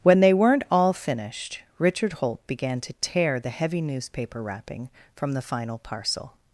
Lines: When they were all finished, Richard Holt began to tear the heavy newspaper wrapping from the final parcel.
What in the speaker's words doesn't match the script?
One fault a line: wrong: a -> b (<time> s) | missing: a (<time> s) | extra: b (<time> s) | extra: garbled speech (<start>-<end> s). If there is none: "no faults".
wrong: were -> weren't (0.3 s)